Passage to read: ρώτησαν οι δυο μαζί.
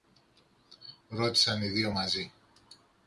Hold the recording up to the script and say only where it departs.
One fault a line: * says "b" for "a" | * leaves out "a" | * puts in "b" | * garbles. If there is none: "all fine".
all fine